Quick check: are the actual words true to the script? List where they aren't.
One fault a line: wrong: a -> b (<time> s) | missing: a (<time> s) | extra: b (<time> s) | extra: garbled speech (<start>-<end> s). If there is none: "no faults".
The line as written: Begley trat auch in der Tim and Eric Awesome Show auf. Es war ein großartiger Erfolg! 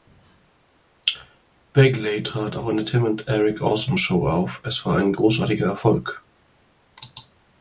no faults